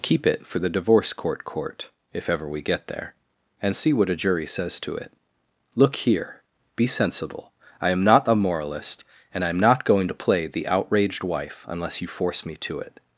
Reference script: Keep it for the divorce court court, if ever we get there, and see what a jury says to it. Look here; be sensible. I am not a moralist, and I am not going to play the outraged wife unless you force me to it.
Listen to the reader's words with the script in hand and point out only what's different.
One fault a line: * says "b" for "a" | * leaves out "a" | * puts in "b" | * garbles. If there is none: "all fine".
all fine